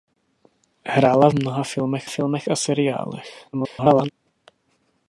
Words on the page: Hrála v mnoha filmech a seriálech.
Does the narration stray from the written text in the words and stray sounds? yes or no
yes